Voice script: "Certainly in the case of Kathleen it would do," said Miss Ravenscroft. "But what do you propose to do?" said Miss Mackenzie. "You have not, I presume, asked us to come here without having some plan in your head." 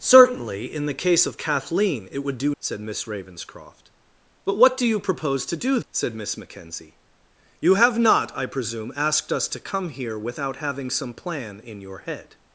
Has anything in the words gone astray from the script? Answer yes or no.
no